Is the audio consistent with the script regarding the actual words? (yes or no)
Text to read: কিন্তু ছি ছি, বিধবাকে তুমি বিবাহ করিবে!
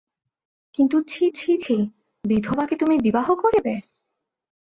no